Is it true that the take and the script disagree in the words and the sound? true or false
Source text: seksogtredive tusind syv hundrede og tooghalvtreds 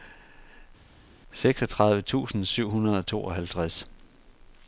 false